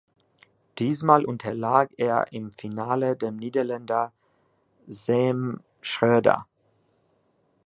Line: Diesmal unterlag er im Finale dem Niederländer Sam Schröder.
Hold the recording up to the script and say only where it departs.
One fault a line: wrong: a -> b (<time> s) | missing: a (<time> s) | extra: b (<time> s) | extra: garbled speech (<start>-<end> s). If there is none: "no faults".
no faults